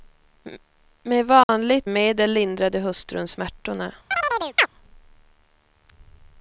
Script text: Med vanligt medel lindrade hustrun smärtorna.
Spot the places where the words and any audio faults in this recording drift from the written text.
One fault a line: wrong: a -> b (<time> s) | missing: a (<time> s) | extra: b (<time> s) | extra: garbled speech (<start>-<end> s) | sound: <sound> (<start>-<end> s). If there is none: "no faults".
sound: dropout (1.4-1.5 s)
sound: chirp (4.1-4.7 s)